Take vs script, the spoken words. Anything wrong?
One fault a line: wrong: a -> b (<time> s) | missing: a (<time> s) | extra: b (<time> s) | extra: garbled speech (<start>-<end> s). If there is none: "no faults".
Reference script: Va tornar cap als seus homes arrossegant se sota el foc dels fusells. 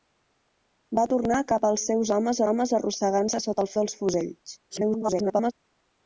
extra: homes (2.5 s)
missing: foc (3.7 s)
extra: garbled speech (4.7-5.5 s)